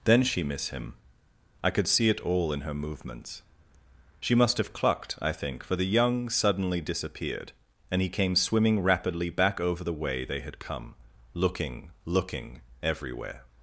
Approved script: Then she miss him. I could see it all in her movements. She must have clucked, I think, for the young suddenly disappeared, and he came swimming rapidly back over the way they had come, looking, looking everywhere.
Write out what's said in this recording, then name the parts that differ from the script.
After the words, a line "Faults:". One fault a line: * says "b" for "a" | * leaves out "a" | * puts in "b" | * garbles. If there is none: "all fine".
Then she miss him. I could see it all in her movements. She must have clucked, I think, for the young suddenly disappeared, and he came swimming rapidly back over the way they had come, looking, looking everywhere.
Faults:
all fine